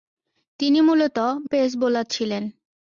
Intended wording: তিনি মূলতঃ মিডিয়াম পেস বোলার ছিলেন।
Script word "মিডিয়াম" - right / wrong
wrong